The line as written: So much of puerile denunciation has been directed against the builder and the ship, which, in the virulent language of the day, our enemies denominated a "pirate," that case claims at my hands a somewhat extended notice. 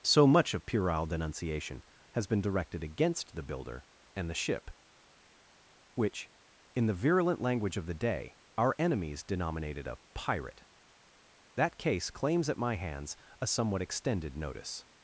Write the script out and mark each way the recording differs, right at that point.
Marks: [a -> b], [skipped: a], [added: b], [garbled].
So much of puerile denunciation has been directed against the builder and the ship, which, in the virulent language of the day, our enemies denominated a "pirate," that case claims at my hands a somewhat extended notice.